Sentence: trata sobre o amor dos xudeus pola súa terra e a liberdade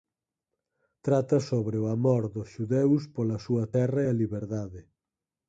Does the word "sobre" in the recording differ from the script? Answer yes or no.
no